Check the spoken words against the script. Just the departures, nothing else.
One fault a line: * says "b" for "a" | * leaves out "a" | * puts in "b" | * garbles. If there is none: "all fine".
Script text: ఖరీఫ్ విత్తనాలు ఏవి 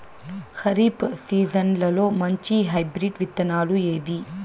* puts in "సీజన్లలో మంచి హైబ్రిడ్"